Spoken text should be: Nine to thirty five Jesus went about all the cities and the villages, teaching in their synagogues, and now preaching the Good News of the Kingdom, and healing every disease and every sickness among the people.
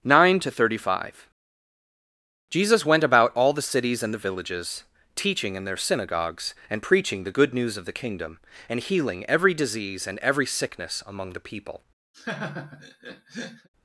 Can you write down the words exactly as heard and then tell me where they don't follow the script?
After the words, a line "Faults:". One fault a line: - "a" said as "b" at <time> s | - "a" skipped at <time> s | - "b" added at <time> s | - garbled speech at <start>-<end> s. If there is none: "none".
Nine to thirty five Jesus went about all the cities and the villages, teaching in their synagogues, and preaching the Good News of the Kingdom, and healing every disease and every sickness among the people.
Faults:
- "now" skipped at 6.8 s